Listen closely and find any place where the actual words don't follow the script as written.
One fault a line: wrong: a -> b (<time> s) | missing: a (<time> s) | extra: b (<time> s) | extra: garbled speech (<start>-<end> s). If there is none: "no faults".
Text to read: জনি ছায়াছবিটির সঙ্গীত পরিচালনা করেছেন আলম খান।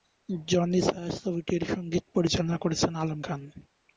no faults